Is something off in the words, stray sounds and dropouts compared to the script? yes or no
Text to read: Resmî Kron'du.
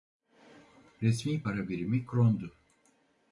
yes